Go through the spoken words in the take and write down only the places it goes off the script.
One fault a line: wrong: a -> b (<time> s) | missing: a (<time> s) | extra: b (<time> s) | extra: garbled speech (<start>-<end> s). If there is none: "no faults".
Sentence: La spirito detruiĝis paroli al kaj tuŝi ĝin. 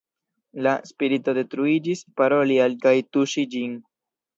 no faults